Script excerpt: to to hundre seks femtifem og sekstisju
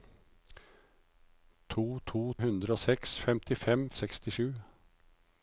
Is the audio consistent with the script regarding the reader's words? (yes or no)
yes